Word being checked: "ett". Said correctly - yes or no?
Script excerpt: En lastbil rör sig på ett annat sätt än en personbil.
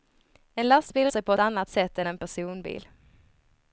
no